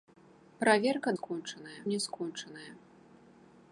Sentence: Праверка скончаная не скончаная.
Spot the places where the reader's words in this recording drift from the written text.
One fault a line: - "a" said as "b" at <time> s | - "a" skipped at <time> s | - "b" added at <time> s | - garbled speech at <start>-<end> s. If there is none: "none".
none